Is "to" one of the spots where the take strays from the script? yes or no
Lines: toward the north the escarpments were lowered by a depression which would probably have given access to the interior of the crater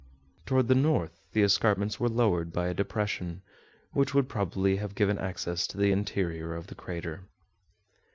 no